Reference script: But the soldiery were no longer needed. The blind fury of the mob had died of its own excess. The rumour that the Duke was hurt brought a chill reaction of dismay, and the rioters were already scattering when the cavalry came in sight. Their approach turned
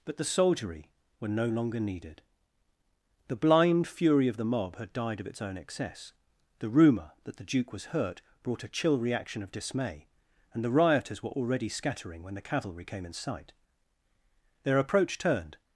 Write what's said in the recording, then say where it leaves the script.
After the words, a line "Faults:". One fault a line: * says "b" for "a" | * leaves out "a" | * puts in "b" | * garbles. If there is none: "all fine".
But the soldiery were no longer needed. The blind fury of the mob had died of its own excess. The rumour that the Duke was hurt brought a chill reaction of dismay, and the rioters were already scattering when the cavalry came in sight. Their approach turned
Faults:
all fine